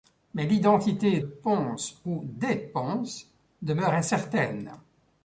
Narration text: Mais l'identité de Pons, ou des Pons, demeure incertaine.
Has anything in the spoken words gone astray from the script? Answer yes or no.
yes